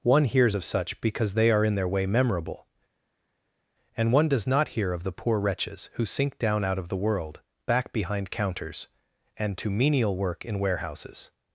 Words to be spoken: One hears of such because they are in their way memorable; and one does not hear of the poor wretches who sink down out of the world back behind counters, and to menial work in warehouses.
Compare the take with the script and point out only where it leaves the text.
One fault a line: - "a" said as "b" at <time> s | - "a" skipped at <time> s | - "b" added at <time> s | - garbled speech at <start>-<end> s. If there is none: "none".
none